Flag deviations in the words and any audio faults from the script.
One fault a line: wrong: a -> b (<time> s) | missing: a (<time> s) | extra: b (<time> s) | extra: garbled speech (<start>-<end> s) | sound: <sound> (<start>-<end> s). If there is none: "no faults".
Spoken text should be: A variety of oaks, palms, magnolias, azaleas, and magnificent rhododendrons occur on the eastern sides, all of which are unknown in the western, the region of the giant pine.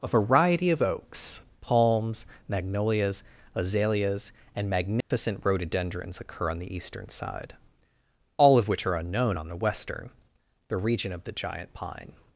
sound: dropout (5.0-5.1 s)
wrong: sides -> side (7.1 s)
wrong: in -> on (9.4 s)